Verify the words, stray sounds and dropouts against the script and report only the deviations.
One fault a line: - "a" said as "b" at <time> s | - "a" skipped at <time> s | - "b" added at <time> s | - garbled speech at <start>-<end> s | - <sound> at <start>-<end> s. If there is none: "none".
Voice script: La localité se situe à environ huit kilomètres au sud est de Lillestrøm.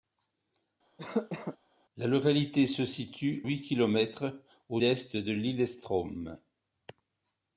- cough at 1.0-1.6 s
- "à environ" skipped at 3.4 s
- "sud" skipped at 4.8 s